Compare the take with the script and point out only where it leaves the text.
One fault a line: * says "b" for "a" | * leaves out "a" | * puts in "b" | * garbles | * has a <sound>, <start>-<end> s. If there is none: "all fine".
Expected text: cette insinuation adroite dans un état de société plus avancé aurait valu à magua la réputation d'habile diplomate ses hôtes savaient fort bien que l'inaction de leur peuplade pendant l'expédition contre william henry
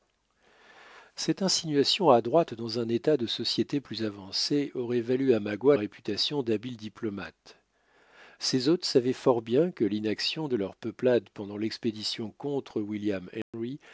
* leaves out "la"
* has a dropout, 13.4-13.5 s